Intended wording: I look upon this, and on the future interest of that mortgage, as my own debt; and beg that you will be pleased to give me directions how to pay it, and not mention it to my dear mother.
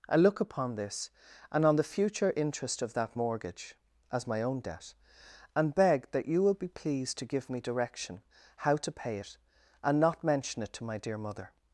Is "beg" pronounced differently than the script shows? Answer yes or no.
no